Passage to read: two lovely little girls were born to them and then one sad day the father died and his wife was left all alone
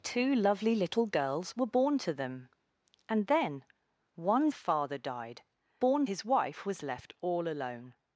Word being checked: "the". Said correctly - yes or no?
no